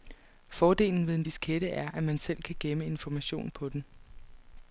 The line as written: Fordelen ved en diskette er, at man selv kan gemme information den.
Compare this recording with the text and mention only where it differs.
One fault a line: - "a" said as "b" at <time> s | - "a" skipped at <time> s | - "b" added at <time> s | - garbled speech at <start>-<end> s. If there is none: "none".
- "på" added at 3.5 s